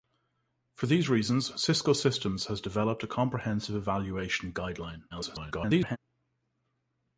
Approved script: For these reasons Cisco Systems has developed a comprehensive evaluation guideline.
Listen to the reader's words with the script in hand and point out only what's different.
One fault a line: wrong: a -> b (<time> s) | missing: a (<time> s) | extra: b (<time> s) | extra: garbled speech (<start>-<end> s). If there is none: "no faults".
extra: garbled speech (5.1-6.0 s)